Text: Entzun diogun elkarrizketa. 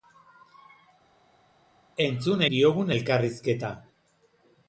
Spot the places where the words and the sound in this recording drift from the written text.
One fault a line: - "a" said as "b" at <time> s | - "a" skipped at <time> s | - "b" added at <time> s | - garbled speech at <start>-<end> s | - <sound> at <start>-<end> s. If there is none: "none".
none